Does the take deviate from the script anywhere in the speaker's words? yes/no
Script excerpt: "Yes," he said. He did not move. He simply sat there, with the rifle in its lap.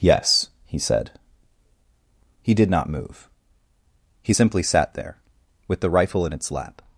no